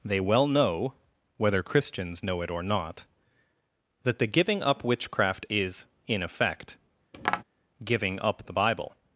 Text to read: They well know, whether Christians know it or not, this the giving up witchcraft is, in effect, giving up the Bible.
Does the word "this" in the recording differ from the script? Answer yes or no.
yes